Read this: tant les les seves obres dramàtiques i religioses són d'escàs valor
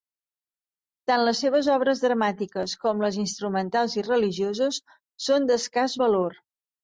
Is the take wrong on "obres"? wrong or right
right